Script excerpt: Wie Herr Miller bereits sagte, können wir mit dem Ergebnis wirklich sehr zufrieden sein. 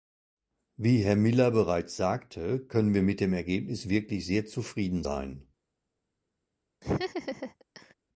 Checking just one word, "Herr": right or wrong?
right